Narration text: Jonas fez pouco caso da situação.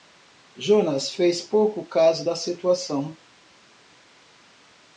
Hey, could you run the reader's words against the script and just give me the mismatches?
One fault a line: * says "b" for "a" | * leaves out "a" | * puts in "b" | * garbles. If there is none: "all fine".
all fine